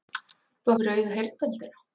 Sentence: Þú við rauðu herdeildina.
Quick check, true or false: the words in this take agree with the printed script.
true